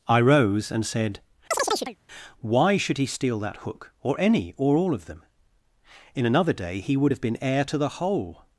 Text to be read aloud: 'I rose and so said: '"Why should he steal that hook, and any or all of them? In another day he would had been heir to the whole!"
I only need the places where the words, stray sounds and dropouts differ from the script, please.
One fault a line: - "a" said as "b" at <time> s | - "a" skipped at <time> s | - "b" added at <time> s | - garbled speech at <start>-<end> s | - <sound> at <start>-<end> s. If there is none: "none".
- "so" skipped at 0.8 s
- chirp at 1.5-2.0 s
- "and" said as "or" at 4.0 s
- "had" said as "have" at 7.1 s